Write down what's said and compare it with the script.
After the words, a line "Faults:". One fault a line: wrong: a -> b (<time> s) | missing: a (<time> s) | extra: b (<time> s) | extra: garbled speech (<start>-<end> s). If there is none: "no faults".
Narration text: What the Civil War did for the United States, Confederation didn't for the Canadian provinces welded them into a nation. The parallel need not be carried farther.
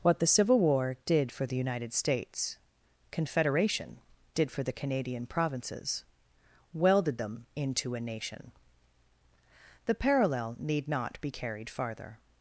What the Civil War did for the United States, Confederation did for the Canadian provinces welded them into a nation. The parallel need not be carried farther.
Faults:
wrong: didn't -> did (4.3 s)